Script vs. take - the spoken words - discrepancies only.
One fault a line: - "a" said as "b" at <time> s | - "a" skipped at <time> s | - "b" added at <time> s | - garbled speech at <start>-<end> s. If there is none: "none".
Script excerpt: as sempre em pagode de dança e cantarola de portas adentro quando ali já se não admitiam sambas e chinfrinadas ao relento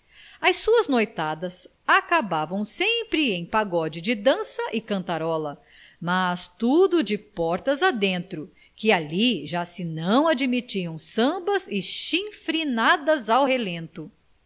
- "suas noitadas acabavam" added at 0.6 s
- "mas tudo" added at 6.0 s
- "quando" said as "que" at 8.7 s